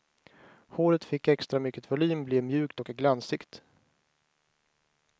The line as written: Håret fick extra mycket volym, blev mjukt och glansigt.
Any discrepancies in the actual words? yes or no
no